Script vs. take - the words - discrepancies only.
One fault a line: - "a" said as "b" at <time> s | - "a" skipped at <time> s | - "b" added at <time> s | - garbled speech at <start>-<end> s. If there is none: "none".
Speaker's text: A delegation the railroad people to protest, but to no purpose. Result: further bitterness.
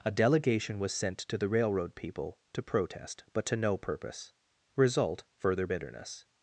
- "was sent to" added at 0.8 s